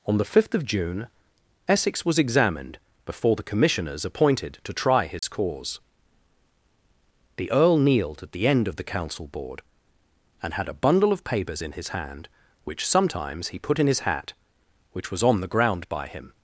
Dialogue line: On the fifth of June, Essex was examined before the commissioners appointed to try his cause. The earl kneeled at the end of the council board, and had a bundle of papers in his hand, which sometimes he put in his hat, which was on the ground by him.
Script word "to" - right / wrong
right